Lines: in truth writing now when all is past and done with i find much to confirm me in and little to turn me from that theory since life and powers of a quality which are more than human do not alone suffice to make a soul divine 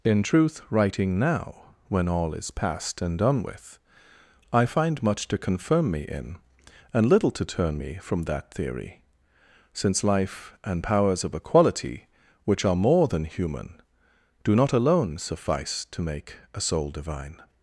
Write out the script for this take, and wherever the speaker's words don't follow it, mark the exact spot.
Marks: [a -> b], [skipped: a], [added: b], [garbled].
in truth writing now when all is past and done with i find much to confirm me in and little to turn me from that theory since life and powers of a quality which are more than human do not alone suffice to make a soul divine